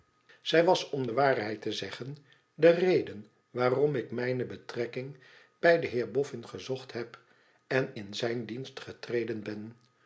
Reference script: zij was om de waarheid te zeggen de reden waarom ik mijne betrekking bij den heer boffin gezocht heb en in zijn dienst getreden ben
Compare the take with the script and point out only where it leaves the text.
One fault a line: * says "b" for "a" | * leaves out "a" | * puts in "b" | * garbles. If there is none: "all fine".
all fine